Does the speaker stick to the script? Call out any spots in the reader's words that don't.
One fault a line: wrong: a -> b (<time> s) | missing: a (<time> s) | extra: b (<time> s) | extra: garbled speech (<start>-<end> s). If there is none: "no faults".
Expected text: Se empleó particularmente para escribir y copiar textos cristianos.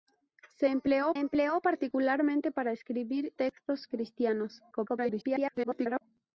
extra: empleó (1.1 s)
missing: y copiar (3.3 s)
extra: garbled speech (4.7-6.0 s)